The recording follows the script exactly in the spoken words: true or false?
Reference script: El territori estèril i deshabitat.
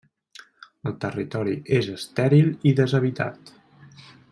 false